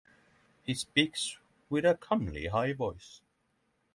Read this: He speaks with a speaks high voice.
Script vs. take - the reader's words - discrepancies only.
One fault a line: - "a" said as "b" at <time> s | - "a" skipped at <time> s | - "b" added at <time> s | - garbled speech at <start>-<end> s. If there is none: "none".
- "speaks" said as "comely" at 1.9 s